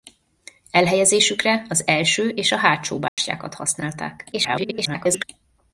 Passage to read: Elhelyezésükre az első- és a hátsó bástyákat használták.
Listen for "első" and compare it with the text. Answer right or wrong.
right